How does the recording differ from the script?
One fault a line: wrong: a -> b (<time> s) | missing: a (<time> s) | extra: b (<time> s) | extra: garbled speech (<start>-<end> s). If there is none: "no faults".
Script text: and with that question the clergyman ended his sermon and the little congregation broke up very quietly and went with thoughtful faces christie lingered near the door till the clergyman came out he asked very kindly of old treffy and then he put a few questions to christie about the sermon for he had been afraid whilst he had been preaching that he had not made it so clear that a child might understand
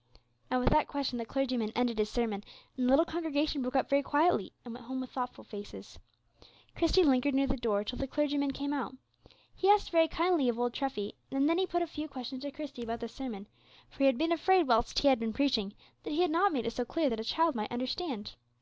extra: home (4.9 s)